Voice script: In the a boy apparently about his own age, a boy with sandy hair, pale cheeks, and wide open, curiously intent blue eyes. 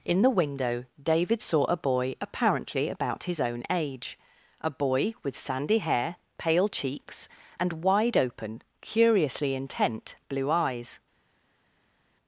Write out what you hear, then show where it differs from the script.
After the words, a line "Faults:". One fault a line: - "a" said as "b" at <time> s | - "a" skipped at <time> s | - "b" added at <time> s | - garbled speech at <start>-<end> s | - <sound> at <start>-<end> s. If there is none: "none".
In the window David saw a boy apparently about his own age, a boy with sandy hair, pale cheeks, and wide open, curiously intent blue eyes.
Faults:
- "window David saw" added at 0.4 s